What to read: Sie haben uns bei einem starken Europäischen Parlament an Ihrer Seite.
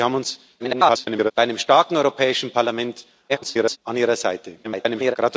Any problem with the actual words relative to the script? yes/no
yes